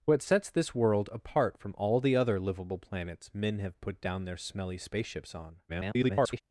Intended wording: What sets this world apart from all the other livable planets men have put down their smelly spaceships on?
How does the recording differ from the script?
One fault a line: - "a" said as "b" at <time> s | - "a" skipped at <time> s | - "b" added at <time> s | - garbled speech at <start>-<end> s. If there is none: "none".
- garbled speech at 5.7-6.4 s